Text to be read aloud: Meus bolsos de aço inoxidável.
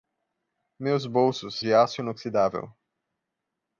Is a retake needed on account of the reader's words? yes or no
no